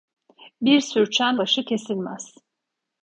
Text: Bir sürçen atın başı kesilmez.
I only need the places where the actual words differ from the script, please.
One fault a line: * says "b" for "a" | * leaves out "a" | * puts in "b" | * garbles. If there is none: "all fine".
* leaves out "atın"